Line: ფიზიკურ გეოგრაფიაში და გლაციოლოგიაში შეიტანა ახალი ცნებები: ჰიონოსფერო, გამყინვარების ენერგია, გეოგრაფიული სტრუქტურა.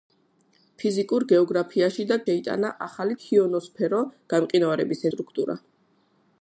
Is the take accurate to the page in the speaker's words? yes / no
no